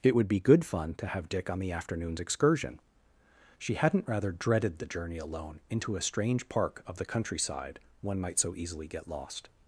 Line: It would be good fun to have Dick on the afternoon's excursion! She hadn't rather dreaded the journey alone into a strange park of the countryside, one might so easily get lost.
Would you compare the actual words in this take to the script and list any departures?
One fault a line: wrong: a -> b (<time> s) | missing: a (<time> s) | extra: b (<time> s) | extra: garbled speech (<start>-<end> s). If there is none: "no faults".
no faults